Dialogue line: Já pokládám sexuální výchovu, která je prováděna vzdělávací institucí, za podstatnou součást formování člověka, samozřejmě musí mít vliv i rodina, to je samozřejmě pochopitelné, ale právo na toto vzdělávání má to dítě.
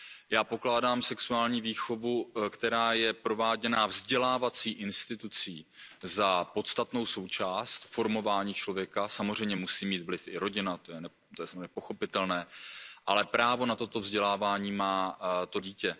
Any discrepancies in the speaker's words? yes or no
no